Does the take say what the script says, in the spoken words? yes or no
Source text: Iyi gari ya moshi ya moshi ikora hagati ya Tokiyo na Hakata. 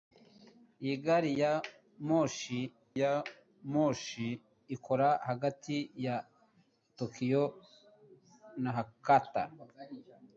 yes